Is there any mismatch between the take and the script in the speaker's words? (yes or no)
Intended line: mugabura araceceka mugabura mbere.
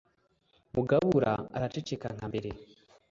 yes